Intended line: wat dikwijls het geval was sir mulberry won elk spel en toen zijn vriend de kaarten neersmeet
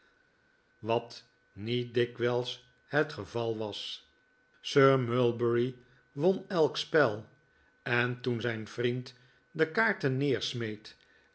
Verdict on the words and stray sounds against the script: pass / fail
fail